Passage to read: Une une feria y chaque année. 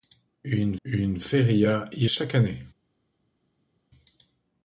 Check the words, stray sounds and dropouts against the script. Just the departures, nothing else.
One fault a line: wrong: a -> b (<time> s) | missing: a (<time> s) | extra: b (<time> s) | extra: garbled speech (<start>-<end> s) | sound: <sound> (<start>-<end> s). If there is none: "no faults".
no faults